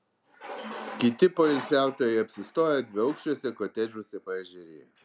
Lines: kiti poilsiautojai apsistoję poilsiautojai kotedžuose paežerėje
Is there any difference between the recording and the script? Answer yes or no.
yes